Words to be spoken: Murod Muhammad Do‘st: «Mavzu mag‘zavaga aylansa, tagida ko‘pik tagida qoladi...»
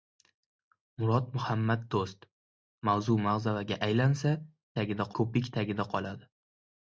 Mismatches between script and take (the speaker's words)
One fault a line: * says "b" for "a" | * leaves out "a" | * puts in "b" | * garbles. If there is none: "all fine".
all fine